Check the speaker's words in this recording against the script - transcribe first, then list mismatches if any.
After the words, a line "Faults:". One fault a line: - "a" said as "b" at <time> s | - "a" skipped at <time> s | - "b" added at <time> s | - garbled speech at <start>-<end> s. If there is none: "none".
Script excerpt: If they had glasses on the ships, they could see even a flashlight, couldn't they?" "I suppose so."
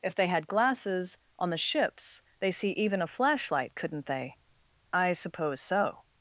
If they had glasses on the ships, they see even a flashlight, couldn't they?" "I suppose so."
Faults:
- "could" skipped at 2.5 s